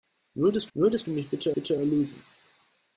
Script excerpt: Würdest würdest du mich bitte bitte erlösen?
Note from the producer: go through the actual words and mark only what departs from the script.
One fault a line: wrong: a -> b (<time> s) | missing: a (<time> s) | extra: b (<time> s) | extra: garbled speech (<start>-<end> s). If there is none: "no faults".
no faults